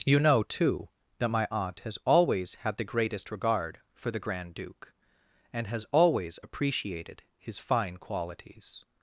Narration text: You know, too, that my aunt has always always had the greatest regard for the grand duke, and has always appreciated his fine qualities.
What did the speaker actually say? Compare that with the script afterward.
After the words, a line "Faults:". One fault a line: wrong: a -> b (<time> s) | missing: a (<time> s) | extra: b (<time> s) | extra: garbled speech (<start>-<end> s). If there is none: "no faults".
You know, too, that my aunt has always had the greatest regard for the grand duke, and has always appreciated his fine qualities.
Faults:
missing: always (2.5 s)